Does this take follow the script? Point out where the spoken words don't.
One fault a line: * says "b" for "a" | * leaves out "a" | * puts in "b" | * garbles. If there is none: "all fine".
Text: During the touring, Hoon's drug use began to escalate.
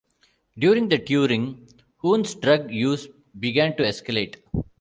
all fine